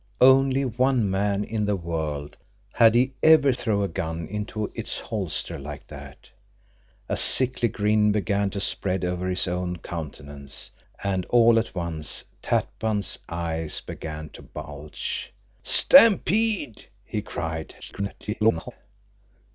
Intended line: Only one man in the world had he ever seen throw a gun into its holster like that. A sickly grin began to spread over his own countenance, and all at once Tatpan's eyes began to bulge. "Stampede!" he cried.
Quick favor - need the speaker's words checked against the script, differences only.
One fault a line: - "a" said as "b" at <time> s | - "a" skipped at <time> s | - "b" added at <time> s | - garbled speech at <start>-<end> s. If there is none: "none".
- "seen" skipped at 3.5 s
- garbled speech at 17.8-18.7 s